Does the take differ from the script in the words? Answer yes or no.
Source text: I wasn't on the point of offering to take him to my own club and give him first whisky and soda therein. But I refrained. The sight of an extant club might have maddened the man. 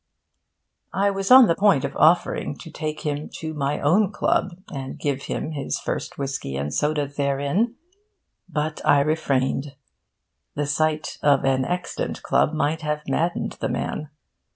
yes